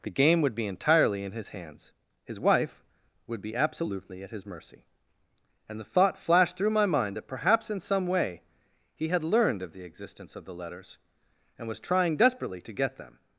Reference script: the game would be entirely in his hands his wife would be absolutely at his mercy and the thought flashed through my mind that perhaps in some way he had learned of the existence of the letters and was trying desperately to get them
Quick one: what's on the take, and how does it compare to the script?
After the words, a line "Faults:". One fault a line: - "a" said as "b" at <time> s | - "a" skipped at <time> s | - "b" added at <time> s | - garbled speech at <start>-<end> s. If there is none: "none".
the game would be entirely in his hands his wife would be absolutely at his mercy and the thought flashed through my mind that perhaps in some way he had learned of the existence of the letters and was trying desperately to get them
Faults:
none